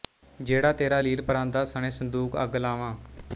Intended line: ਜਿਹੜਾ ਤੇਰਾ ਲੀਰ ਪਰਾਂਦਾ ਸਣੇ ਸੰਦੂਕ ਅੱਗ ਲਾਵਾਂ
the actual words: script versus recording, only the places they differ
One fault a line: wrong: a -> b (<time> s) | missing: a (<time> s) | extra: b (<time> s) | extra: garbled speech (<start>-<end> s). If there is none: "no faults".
no faults